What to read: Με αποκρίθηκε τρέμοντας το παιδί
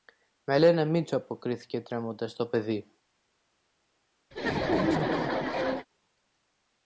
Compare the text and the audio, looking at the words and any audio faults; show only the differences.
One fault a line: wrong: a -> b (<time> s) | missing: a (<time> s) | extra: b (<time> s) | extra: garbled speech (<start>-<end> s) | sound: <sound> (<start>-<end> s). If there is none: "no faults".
extra: λένε Μήτσο (0.6 s)
sound: laugh (4.3-5.9 s)